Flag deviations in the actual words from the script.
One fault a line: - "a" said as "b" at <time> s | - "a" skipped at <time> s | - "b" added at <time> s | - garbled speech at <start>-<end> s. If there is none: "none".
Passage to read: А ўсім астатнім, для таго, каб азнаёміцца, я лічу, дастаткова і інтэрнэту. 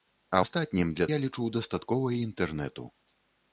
- "ўсім" skipped at 0.4 s
- "таго каб азнаёміцца" skipped at 1.1 s